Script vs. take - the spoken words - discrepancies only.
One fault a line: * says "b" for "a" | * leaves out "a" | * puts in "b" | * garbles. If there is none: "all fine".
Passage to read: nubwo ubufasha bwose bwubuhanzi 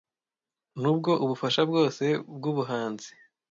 all fine